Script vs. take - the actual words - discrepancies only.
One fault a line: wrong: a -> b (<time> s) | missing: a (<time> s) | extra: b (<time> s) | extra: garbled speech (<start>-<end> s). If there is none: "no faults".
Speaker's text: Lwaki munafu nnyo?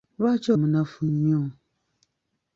no faults